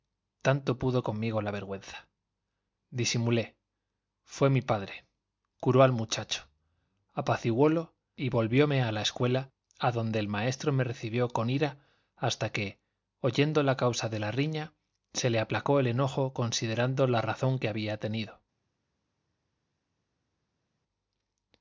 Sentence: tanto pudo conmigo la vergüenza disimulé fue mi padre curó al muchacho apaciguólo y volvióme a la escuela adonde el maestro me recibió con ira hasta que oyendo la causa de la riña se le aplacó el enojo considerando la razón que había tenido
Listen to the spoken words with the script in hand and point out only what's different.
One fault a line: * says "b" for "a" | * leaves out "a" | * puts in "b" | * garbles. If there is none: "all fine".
all fine